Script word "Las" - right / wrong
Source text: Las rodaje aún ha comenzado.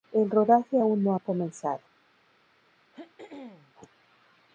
wrong